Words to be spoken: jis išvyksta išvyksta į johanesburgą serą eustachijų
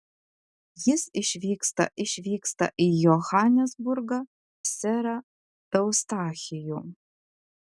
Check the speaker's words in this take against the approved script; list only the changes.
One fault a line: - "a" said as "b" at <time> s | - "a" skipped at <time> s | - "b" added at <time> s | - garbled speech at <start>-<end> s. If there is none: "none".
none